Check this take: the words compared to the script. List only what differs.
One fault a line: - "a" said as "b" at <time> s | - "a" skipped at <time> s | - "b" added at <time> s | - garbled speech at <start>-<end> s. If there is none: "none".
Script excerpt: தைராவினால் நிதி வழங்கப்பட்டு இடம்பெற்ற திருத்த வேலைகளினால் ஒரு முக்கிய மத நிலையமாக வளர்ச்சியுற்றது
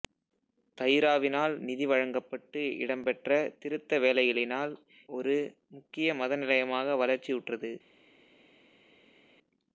none